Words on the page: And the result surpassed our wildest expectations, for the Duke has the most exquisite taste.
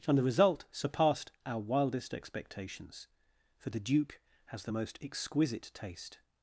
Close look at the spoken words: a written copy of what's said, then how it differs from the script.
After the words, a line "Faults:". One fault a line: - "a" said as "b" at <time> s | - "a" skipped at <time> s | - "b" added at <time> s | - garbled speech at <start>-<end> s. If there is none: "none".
And the result surpassed our wildest expectations, for the Duke has the most exquisite taste.
Faults:
none